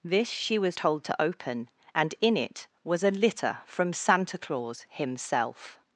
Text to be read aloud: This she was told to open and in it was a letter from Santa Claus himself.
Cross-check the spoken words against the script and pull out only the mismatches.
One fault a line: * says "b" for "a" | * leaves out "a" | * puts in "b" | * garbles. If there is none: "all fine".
* says "litter" for "letter"